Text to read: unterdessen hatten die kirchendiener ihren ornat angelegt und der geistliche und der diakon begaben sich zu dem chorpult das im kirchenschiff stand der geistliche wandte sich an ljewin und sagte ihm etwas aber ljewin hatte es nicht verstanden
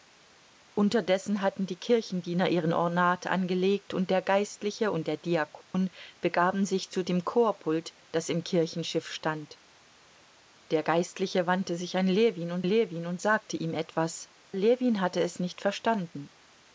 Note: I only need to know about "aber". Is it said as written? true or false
false